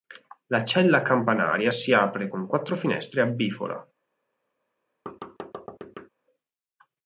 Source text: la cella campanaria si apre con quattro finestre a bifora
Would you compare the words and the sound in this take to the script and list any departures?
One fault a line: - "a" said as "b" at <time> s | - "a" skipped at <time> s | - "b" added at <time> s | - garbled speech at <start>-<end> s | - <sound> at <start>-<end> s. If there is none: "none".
- thud at 5.1-6.1 s